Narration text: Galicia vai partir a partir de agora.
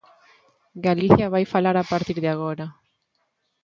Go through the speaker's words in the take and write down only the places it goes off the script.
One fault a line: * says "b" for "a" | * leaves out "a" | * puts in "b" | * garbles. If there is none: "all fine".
* says "falar" for "partir"